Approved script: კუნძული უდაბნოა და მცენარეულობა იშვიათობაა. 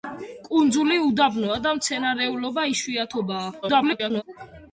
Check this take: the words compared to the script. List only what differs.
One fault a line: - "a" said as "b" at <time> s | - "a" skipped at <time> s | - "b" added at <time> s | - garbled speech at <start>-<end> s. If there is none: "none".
- garbled speech at 3.6-4.2 s